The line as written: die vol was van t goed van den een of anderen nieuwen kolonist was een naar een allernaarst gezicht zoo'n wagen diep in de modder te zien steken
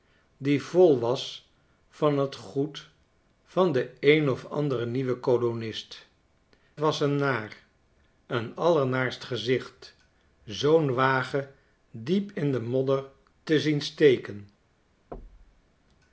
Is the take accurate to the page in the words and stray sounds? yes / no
no